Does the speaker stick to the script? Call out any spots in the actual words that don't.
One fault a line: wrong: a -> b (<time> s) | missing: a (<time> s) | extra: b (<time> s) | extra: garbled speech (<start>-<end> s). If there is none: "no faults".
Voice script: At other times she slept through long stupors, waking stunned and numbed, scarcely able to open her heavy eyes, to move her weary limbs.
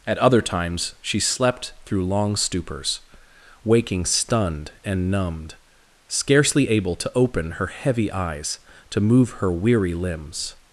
no faults